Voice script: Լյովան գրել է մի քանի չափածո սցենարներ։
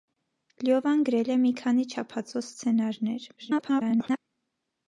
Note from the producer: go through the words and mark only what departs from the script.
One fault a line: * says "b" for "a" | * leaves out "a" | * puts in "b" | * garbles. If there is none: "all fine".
* garbles